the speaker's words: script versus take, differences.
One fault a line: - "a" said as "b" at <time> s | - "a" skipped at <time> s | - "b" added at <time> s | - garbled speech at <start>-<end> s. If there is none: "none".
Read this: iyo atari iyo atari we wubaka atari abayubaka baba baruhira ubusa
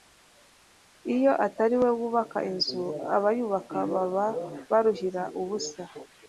- "iyo atari" skipped at 1.8 s
- "atari" said as "inzu" at 2.5 s